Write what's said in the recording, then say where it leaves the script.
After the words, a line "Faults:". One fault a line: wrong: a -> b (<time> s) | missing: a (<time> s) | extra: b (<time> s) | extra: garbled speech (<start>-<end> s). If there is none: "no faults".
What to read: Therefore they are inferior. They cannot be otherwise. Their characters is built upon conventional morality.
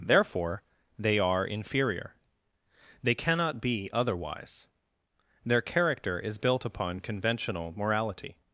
Therefore they are inferior. They cannot be otherwise. Their character is built upon conventional morality.
Faults:
wrong: characters -> character (5.6 s)